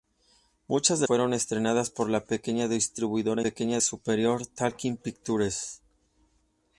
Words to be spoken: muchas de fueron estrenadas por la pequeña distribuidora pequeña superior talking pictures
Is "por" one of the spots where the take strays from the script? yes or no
no